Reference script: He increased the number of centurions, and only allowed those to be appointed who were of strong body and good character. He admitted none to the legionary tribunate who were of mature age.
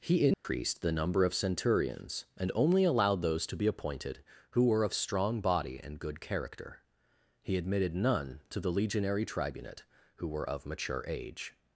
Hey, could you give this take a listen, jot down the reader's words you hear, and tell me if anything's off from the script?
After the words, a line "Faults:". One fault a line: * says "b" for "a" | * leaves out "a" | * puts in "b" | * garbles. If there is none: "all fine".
He increased the number of centurions, and only allowed those to be appointed who were of strong body and good character. He admitted none to the legionary tribunate who were of mature age.
Faults:
all fine